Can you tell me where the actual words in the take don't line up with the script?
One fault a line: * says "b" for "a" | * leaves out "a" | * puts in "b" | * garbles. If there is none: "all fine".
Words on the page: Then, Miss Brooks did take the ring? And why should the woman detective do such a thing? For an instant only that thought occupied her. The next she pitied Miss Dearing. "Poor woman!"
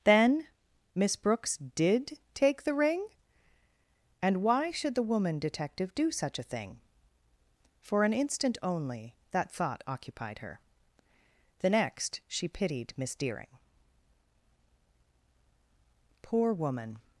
all fine